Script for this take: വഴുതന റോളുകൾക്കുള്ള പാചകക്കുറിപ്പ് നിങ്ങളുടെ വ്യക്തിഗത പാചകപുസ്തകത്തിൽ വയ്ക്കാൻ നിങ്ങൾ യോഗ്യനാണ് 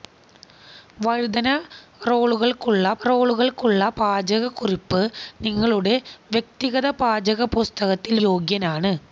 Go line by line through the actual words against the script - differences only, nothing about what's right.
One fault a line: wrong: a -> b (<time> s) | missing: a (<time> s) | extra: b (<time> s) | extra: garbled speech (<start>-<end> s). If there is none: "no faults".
extra: റോളുകൾക്കുള്ള (3.1 s)
missing: വയ്ക്കാൻ നിങ്ങൾ (8.2 s)